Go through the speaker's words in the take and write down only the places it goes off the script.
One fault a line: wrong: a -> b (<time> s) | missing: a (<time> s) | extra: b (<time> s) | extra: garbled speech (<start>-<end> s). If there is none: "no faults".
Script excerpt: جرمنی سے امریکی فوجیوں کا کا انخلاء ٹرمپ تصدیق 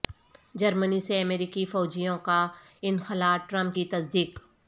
missing: کا (2.5 s)
extra: کی (3.7 s)